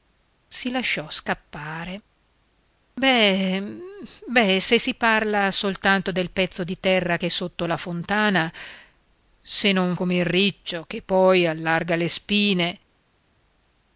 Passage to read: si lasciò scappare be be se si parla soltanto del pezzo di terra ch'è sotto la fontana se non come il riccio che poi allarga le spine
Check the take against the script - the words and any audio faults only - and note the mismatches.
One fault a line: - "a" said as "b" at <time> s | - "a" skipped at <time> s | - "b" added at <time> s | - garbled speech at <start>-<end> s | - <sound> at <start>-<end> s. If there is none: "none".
none